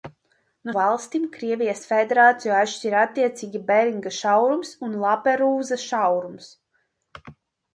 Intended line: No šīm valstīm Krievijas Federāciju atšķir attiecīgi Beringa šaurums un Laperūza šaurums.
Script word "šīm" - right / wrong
wrong